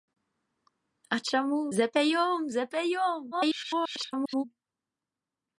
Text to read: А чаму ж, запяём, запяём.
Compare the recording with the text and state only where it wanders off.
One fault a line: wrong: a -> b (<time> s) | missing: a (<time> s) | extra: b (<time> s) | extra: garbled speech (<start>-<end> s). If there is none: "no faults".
missing: ж (1.6 s)
extra: garbled speech (3.3-4.4 s)